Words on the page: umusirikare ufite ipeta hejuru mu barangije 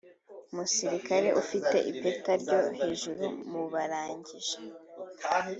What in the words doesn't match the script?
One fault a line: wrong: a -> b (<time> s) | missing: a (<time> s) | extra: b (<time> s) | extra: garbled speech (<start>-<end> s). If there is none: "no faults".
extra: ryo (2.4 s)